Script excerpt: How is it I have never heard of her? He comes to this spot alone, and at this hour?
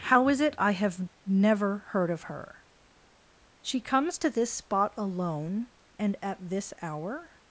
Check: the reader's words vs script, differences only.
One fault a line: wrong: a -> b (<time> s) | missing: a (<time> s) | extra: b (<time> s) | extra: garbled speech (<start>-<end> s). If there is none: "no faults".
wrong: He -> She (3.6 s)